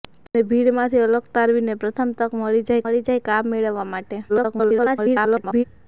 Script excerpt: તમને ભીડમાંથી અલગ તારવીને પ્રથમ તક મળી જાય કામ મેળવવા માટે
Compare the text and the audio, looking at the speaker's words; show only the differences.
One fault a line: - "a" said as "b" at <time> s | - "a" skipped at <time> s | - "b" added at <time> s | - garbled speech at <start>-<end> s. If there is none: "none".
- "મળી જાય" added at 2.8 s
- garbled speech at 4.3-5.6 s